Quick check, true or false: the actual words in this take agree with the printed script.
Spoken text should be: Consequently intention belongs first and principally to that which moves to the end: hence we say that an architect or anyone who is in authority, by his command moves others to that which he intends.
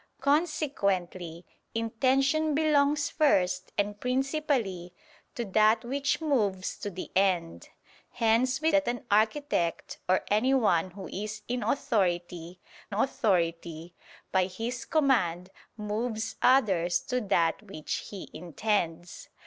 false